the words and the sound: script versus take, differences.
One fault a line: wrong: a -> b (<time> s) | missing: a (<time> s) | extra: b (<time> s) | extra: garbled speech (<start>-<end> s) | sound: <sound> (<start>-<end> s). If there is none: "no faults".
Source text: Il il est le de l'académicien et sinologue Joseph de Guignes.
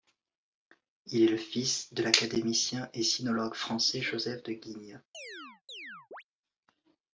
missing: il (1.2 s)
extra: fils (1.4 s)
extra: français (3.5 s)
sound: chirp (5.1-6.2 s)